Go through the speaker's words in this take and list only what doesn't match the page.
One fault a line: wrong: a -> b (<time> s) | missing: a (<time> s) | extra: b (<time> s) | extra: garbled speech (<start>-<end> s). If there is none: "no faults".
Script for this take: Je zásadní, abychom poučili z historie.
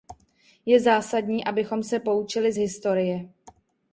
extra: se (1.8 s)